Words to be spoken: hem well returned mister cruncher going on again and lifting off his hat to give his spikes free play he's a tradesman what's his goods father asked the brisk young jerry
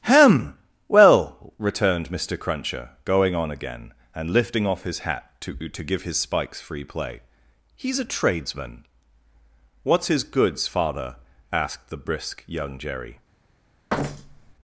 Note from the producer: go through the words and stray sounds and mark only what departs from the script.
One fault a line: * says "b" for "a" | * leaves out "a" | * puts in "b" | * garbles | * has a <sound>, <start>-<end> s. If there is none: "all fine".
* puts in "to"
* has a thud, 13.9-14.5 s